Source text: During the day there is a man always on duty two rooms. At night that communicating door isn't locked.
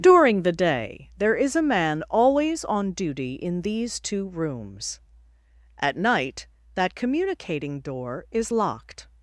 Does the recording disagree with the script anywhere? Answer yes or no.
yes